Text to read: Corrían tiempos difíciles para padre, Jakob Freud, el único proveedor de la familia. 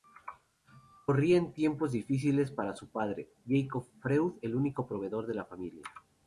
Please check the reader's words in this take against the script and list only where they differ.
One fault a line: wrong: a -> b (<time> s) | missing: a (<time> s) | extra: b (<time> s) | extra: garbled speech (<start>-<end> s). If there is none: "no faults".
extra: su (2.7 s)